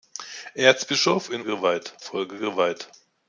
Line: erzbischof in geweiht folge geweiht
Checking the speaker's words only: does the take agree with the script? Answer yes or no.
yes